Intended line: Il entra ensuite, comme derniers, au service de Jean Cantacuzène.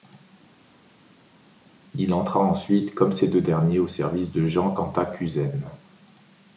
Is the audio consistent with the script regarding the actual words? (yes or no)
no